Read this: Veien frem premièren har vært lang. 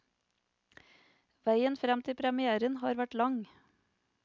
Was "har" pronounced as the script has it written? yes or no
yes